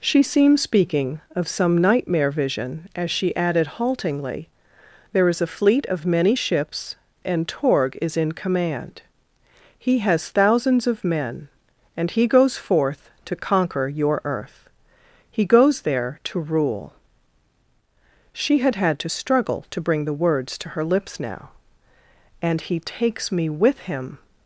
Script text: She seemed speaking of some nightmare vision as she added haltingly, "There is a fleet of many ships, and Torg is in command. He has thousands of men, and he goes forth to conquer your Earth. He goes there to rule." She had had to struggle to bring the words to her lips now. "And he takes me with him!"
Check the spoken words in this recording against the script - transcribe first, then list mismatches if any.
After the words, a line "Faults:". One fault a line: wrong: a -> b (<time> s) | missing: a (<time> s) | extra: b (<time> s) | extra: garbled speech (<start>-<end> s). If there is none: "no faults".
She seemed speaking of some nightmare vision as she added haltingly, "There is a fleet of many ships, and Torg is in command. He has thousands of men, and he goes forth to conquer your Earth. He goes there to rule." She had had to struggle to bring the words to her lips now. "And he takes me with him!"
Faults:
no faults